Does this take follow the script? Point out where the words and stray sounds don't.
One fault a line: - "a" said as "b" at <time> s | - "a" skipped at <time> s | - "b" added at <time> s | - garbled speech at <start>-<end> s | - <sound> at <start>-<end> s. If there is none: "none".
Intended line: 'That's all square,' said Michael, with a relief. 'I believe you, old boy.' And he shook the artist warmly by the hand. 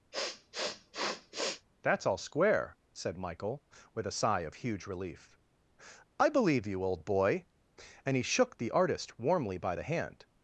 - sniff at 0.1-1.7 s
- "sigh of huge" added at 4.2 s